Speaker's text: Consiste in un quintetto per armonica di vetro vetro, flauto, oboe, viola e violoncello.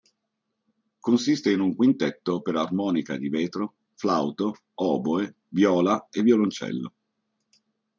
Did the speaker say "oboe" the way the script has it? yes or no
yes